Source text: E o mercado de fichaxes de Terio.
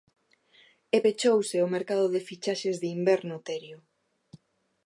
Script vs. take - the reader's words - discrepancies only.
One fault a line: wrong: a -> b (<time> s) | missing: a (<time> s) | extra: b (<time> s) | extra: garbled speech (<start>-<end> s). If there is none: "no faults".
extra: pechouse (1.0 s)
extra: inverno (3.0 s)